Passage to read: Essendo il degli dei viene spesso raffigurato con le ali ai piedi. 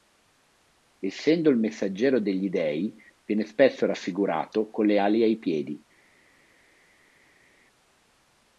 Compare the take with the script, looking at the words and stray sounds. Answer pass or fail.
fail